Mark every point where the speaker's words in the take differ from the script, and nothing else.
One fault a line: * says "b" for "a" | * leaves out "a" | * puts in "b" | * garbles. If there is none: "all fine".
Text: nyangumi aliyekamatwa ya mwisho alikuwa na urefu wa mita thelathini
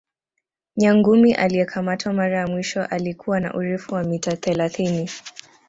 * puts in "mara"